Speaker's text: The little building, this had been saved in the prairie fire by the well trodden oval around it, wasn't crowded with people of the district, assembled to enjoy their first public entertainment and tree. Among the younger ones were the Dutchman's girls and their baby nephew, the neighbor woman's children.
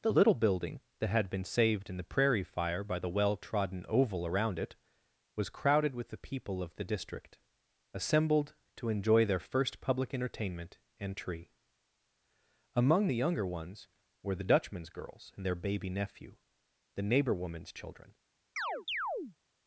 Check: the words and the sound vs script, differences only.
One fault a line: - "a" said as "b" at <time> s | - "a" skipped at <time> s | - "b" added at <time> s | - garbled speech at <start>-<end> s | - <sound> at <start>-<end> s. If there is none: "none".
- "this" said as "that" at 1.0 s
- "wasn't" said as "was" at 5.3 s
- "the" added at 6.1 s
- chirp at 18.6-19.4 s